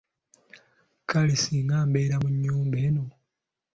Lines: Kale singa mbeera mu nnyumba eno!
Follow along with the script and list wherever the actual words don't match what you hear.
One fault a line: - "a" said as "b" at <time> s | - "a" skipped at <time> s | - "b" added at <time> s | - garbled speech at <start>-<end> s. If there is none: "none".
none